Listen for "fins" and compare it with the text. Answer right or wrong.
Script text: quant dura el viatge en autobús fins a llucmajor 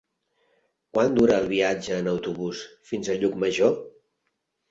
right